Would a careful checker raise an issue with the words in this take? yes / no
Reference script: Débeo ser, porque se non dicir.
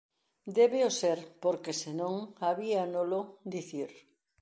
yes